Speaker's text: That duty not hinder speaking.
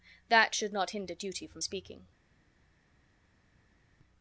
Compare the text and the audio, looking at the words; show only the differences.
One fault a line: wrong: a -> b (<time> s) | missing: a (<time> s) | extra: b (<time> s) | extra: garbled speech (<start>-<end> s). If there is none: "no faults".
wrong: duty -> should (0.6 s)
extra: duty from (1.1 s)